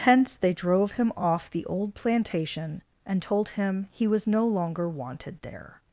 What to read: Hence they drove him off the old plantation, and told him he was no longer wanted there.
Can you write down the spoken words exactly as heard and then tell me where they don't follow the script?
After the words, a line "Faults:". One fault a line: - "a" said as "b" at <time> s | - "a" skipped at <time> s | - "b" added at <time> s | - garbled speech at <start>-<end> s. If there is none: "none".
Hence they drove him off the old plantation, and told him he was no longer wanted there.
Faults:
none